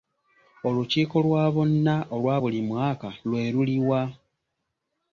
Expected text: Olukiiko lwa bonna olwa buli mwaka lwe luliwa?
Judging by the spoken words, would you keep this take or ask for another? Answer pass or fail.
pass